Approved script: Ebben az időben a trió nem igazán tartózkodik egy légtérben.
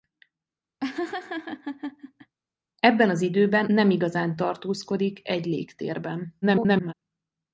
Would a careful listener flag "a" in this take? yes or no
yes